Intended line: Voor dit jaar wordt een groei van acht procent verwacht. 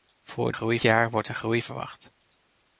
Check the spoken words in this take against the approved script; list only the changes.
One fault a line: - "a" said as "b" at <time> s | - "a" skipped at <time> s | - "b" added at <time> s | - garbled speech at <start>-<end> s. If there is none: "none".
- "dit" said as "groei" at 0.5 s
- "van acht procent" skipped at 1.6 s